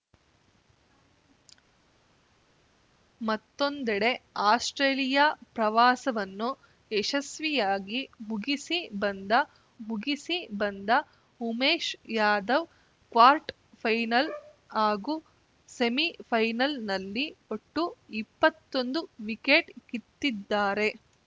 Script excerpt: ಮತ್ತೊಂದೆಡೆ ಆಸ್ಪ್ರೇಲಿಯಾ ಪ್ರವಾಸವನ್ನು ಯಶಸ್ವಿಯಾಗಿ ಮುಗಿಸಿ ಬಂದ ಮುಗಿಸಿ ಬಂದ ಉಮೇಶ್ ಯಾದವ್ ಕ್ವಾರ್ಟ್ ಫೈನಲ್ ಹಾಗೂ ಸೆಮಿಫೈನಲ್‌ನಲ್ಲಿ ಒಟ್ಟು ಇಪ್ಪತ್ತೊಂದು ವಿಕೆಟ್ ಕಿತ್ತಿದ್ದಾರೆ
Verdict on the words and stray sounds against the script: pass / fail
pass